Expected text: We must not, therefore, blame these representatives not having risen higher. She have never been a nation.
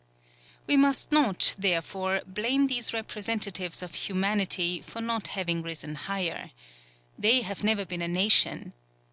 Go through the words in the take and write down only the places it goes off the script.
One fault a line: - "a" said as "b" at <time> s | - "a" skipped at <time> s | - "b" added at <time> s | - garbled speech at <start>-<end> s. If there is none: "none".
- "of humanity for" added at 3.8 s
- "She" said as "They" at 7.2 s